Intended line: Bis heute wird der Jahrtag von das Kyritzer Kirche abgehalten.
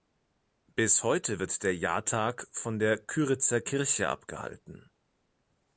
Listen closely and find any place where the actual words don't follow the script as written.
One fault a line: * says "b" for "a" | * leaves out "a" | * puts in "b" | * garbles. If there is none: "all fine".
* says "der" for "das"